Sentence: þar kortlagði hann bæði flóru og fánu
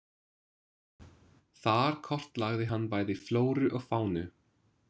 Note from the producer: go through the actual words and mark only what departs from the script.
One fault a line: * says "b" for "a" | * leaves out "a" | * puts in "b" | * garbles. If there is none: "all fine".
all fine